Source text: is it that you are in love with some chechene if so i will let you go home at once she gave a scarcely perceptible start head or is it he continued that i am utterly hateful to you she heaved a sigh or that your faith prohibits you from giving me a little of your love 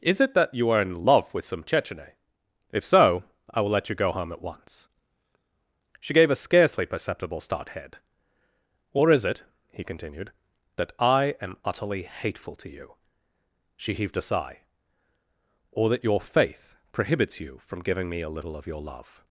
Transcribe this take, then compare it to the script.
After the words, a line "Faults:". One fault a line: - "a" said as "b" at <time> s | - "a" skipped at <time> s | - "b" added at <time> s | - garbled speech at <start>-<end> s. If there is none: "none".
is it that you are in love with some chechene if so i will let you go home at once she gave a scarcely perceptible start head or is it he continued that i am utterly hateful to you she heaved a sigh or that your faith prohibits you from giving me a little of your love
Faults:
none